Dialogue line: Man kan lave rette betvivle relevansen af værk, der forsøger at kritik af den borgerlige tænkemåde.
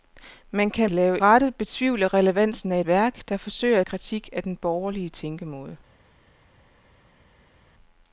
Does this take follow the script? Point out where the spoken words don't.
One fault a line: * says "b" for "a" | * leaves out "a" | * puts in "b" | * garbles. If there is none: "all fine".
all fine